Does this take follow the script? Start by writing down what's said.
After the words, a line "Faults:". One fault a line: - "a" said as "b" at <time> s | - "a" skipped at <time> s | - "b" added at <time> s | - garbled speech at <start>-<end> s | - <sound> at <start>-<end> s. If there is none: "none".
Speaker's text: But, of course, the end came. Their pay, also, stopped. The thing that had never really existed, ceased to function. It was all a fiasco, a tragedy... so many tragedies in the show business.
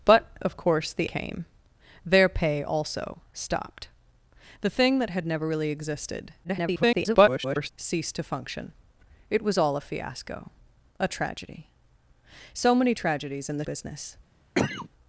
But, of course, the came. Their pay, also, stopped. The thing that had never really existed, [garbled] ceased to function. It was all a fiasco, a tragedy... so many tragedies in the business.
Faults:
- "end" skipped at 1.1 s
- garbled speech at 6.4-7.7 s
- "show" skipped at 13.7 s
- cough at 14.5-14.9 s